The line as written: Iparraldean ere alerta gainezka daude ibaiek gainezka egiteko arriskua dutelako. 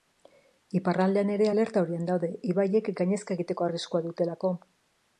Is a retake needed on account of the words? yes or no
yes